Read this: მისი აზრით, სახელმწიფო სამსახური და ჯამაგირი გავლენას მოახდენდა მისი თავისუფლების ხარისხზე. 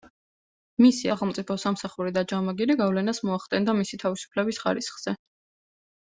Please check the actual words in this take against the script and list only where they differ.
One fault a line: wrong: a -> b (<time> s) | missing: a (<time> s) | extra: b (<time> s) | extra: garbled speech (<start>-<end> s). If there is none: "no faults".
missing: აზრით (1.1 s)